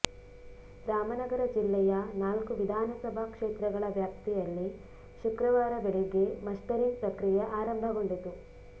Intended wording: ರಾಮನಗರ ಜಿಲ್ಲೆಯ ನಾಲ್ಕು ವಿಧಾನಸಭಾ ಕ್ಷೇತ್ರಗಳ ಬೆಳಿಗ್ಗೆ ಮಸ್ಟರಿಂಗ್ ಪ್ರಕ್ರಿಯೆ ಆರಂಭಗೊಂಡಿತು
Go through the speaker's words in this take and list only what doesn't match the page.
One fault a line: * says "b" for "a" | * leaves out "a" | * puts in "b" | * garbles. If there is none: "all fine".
* puts in "ವ್ಯಾಪ್ತಿಯಲ್ಲಿ ಶುಕ್ರವಾರ"